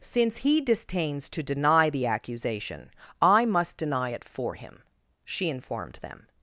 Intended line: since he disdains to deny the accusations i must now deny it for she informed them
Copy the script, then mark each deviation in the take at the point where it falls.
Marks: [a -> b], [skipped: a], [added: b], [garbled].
since he disdains to deny the [accusations -> accusation] i must [skipped: now] deny it for [added: him] she informed them